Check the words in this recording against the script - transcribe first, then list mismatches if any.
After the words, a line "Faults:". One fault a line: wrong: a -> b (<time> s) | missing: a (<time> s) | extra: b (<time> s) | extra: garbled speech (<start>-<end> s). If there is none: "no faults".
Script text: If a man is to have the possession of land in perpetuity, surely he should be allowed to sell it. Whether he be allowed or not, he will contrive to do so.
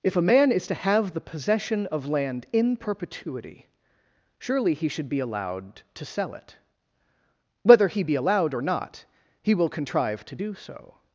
If a man is to have the possession of land in perpetuity, surely he should be allowed to sell it. Whether he be allowed or not, he will contrive to do so.
Faults:
no faults